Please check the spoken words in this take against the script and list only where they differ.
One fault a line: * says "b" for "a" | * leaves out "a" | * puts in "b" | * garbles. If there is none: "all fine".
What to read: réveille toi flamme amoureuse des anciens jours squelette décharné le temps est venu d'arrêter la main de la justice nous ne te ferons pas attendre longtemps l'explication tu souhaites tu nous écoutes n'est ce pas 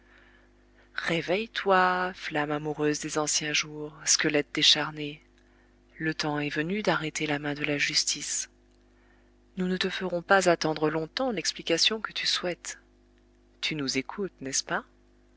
* puts in "que"